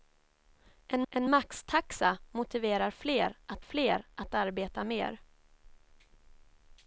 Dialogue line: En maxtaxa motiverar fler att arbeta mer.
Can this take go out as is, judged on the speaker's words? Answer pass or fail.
fail